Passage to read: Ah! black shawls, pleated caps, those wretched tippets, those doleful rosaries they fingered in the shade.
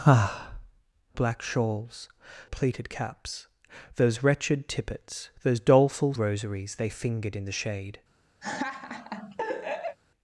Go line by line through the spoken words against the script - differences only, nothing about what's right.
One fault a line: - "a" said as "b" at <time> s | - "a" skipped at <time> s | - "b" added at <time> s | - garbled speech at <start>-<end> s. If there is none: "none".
none